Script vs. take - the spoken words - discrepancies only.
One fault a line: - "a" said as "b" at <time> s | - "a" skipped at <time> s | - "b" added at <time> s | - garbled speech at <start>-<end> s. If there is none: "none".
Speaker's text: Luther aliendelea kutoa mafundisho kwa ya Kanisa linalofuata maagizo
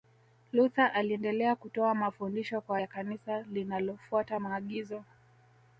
none